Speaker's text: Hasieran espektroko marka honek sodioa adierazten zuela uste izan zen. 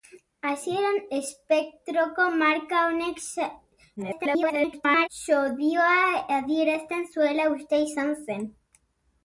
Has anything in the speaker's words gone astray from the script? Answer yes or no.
yes